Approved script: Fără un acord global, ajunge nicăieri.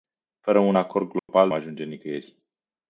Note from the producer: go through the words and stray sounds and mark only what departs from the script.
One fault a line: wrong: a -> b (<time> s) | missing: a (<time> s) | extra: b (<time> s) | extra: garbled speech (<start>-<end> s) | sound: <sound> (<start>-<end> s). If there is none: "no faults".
sound: dropout (1.2-1.3 s)